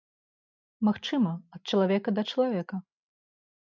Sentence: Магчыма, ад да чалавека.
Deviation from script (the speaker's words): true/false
true